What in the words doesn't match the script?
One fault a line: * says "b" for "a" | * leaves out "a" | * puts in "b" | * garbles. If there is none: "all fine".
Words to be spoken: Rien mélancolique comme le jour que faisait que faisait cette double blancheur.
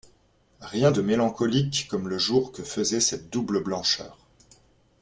* puts in "de"
* leaves out "que faisait"